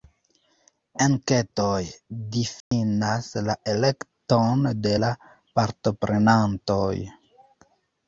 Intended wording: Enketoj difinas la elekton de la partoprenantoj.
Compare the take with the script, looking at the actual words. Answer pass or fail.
pass